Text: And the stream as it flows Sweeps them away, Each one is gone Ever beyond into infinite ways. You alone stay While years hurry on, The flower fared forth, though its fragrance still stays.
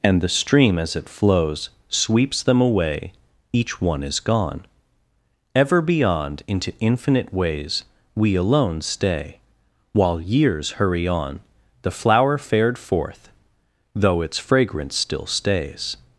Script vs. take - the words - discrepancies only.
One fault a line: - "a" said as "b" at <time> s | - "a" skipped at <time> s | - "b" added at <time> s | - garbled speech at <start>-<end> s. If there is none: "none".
- "You" said as "We" at 8.2 s